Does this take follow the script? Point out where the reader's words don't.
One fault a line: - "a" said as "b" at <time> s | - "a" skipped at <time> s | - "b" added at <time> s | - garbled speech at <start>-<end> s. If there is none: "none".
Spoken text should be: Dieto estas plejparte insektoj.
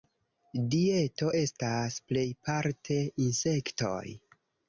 none